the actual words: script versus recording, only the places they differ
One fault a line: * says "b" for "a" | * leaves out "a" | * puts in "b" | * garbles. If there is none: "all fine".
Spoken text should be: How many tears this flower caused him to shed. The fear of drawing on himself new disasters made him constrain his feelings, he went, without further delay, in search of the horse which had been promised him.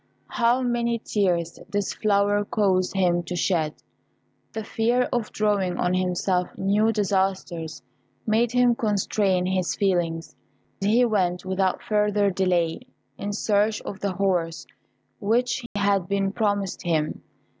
all fine